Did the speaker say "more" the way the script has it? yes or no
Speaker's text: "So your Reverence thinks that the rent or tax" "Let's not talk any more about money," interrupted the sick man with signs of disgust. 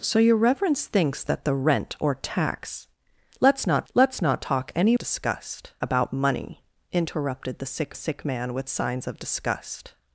no